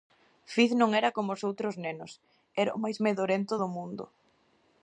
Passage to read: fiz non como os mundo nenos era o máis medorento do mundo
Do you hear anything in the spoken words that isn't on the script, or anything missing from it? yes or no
yes